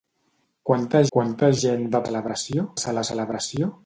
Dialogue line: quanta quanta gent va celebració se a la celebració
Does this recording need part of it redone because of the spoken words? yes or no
no